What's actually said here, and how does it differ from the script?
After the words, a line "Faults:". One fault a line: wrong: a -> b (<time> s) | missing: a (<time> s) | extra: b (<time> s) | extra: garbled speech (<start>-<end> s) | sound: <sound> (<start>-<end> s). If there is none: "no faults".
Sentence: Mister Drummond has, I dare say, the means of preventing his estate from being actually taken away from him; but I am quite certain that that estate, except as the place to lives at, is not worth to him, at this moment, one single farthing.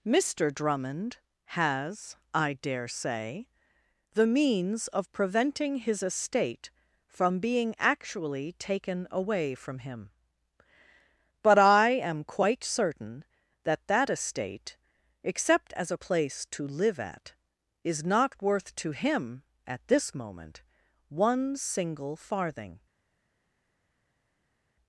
Mister Drummond has, I dare say, the means of preventing his estate from being actually taken away from him; but I am quite certain that that estate, except as a place to live at, is not worth to him, at this moment, one single farthing.
Faults:
wrong: the -> a (15.9 s)
wrong: lives -> live (16.7 s)